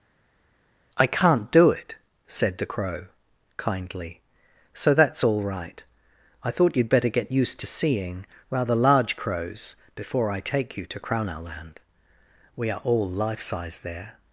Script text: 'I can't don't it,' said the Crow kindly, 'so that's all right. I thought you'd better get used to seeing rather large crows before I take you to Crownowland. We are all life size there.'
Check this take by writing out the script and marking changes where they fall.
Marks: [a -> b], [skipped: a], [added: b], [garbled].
'I can't [don't -> do] it,' said the Crow kindly, 'so that's all right. I thought you'd better get used to seeing rather large crows before I take you to Crownowland. We are all life size there.'